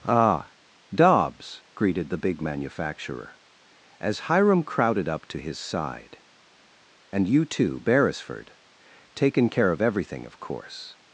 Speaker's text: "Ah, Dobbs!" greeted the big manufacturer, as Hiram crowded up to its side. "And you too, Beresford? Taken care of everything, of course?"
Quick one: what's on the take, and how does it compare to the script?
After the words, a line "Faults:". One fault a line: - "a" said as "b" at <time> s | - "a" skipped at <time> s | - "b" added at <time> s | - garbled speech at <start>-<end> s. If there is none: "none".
"Ah, Dobbs!" greeted the big manufacturer, as Hiram crowded up to his side. "And you too, Beresford? Taken care of everything, of course?"
Faults:
- "its" said as "his" at 5.4 s